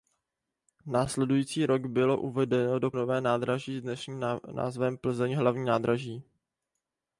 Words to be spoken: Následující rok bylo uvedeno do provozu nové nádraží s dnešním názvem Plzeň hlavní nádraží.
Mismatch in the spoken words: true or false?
true